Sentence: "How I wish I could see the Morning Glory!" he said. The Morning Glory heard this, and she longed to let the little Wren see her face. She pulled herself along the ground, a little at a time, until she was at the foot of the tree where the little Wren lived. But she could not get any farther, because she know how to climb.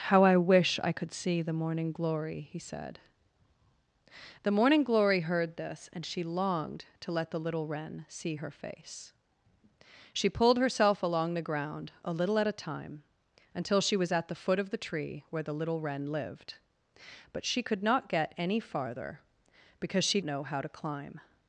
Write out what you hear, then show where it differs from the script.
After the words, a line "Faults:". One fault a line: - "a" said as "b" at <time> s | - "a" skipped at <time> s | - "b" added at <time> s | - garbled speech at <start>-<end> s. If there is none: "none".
"How I wish I could see the Morning Glory!" he said. The Morning Glory heard this, and she longed to let the little Wren see her face. She pulled herself along the ground, a little at a time, until she was at the foot of the tree where the little Wren lived. But she could not get any farther, because she know how to climb.
Faults:
none